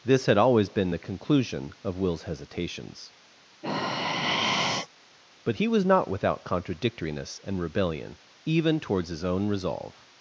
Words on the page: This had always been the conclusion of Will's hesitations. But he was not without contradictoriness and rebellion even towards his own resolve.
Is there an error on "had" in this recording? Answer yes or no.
no